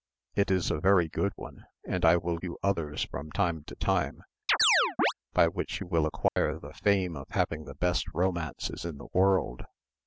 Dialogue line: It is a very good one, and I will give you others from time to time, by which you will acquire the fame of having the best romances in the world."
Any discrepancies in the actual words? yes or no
yes